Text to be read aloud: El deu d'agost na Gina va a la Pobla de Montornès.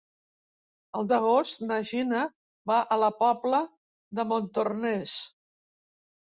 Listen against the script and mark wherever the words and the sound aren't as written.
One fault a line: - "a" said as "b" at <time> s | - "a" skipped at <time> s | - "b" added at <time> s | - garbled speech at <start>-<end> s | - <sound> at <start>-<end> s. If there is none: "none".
- "deu" skipped at 1.1 s